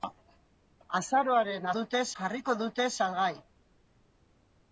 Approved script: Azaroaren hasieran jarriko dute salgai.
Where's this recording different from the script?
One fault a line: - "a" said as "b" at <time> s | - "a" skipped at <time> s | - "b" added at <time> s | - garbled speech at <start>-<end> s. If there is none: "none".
- "hasieran" said as "dute" at 1.8 s